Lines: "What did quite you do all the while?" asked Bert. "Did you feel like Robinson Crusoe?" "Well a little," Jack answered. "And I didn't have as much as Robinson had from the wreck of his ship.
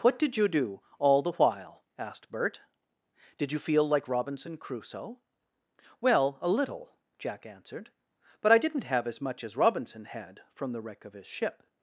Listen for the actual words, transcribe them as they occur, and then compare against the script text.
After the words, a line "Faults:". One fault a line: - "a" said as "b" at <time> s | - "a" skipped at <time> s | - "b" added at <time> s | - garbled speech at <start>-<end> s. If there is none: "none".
"What did you do all the while?" asked Bert. "Did you feel like Robinson Crusoe?" "Well a little," Jack answered. "But I didn't have as much as Robinson had from the wreck of his ship.
Faults:
- "quite" skipped at 0.3 s
- "And" said as "But" at 8.4 s